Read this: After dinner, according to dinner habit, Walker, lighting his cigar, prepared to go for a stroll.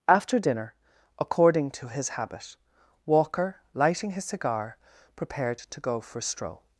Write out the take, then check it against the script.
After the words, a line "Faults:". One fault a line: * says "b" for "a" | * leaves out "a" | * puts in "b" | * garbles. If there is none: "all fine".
After dinner, according to his habit, Walker, lighting his cigar, prepared to go for a stroll.
Faults:
* says "his" for "dinner"